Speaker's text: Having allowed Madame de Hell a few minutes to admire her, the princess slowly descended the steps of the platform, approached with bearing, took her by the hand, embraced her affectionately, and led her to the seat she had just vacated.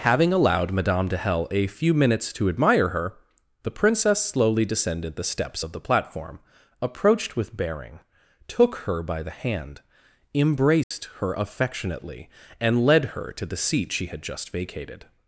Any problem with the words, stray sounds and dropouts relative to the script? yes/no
yes